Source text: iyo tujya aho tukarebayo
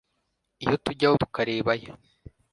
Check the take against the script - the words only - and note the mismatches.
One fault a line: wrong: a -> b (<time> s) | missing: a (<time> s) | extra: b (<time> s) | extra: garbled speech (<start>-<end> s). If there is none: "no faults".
no faults